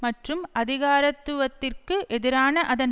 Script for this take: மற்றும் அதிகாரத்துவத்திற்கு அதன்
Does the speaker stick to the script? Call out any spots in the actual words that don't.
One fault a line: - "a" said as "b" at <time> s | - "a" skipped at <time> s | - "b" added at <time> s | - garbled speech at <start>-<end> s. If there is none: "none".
- "எதிரான" added at 2.1 s